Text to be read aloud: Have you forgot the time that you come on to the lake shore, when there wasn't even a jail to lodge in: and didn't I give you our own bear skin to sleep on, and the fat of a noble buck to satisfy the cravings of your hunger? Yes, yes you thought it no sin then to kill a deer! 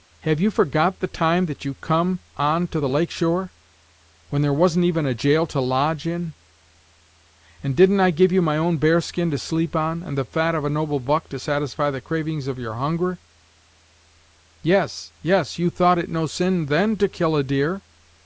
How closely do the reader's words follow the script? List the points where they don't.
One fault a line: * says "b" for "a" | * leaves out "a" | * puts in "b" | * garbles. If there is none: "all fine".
* says "my" for "our"